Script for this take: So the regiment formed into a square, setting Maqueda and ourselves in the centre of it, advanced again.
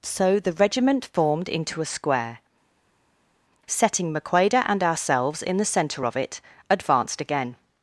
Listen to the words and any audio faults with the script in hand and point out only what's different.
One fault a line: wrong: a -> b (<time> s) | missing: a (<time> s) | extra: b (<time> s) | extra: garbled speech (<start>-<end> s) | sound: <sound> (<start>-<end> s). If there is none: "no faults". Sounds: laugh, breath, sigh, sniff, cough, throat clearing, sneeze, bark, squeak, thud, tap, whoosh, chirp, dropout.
no faults